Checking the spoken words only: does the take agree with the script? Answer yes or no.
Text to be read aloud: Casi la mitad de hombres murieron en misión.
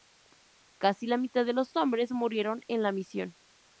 no